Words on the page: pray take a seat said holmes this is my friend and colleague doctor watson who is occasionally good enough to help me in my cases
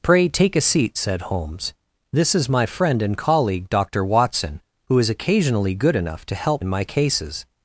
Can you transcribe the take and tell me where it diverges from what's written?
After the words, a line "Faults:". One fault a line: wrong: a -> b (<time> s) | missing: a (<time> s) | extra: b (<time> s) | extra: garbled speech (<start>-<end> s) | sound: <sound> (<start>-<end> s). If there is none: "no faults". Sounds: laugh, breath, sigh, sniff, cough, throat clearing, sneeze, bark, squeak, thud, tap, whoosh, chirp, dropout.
pray take a seat said holmes this is my friend and colleague doctor watson who is occasionally good enough to help in my cases
Faults:
missing: me (6.6 s)